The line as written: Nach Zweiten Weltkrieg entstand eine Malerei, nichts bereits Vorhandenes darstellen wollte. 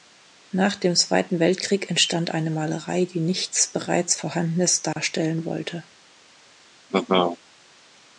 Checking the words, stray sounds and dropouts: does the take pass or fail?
fail